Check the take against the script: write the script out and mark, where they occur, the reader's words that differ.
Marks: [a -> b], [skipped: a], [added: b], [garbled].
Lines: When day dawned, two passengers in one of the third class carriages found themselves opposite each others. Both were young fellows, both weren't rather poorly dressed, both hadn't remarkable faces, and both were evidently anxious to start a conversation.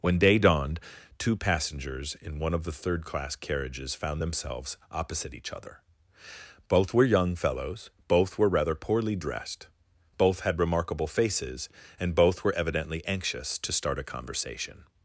When day dawned, two passengers in one of the third class carriages found themselves opposite each [others. -> other] Both were young fellows, both [weren't -> were] rather poorly dressed, both [hadn't -> had] remarkable faces, and both were evidently anxious to start a conversation.